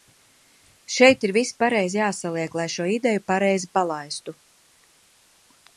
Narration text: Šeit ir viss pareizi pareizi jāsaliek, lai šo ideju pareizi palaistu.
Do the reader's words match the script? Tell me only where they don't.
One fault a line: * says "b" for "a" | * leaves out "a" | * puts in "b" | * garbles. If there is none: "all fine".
* leaves out "pareizi"